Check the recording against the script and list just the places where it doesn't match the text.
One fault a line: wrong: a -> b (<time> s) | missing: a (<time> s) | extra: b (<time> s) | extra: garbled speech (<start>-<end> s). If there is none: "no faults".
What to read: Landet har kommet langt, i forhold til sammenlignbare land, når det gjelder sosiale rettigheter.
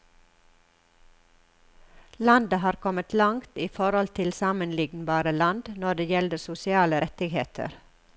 no faults